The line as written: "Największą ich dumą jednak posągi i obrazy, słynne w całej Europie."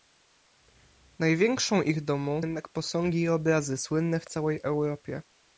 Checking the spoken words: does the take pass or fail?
pass